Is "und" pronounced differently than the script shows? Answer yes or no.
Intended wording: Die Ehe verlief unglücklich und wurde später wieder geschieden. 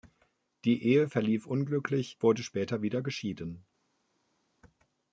yes